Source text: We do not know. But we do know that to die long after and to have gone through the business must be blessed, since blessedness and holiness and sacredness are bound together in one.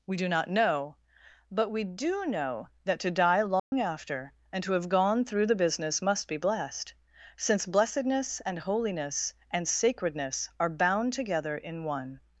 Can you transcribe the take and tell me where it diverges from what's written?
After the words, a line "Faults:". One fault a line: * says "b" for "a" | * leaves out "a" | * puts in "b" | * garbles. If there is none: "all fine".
We do not know. But we do know that to die long after and to have gone through the business must be blessed, since blessedness and holiness and sacredness are bound together in one.
Faults:
all fine